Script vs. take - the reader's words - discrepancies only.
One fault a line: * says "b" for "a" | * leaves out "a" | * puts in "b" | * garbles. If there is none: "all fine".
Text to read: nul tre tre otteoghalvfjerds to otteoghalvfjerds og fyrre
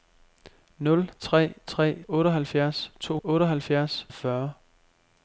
all fine